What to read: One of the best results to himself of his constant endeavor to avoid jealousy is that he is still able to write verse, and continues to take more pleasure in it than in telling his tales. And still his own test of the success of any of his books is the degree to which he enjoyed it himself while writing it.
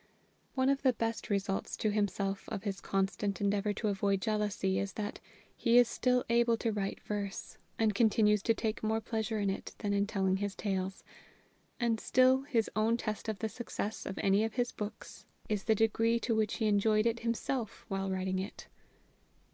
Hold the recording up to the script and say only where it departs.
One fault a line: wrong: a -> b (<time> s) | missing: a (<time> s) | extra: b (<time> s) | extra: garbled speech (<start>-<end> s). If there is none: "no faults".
no faults